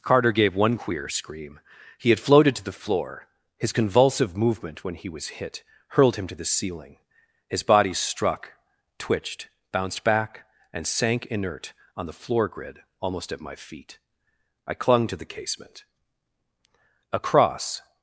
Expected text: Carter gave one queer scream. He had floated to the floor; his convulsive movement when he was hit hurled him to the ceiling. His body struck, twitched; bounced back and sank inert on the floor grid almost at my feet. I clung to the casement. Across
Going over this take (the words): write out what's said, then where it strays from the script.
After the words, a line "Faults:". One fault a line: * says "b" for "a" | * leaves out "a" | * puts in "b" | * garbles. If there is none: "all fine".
Carter gave one queer scream. He had floated to the floor; his convulsive movement when he was hit hurled him to the ceiling. His body struck, twitched; bounced back and sank inert on the floor grid almost at my feet. I clung to the casement. Across
Faults:
all fine